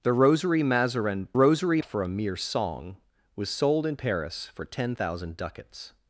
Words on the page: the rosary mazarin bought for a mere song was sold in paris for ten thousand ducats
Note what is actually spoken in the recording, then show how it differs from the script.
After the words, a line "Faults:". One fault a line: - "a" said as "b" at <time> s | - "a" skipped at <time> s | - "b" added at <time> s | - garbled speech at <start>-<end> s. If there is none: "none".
the rosary mazarin rosary for a mere song was sold in paris for ten thousand ducats
Faults:
- "bought" said as "rosary" at 1.3 s